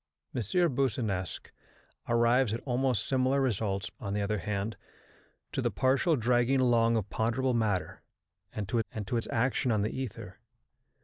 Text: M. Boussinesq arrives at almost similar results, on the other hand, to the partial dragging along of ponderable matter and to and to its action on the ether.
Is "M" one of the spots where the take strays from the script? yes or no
no